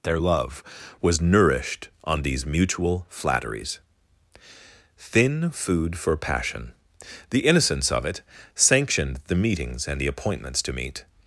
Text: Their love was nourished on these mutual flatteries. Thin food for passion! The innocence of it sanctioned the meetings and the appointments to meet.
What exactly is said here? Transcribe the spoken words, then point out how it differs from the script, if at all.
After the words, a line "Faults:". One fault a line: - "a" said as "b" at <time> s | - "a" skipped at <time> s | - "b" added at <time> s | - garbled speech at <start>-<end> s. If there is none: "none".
Their love was nourished on these mutual flatteries. Thin food for passion! The innocence of it sanctioned the meetings and the appointments to meet.
Faults:
none